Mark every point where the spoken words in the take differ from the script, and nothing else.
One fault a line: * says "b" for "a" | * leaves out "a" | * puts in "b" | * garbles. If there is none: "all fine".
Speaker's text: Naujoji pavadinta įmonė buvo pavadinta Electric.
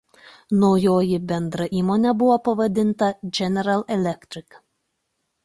* says "bendra" for "pavadinta"
* puts in "General"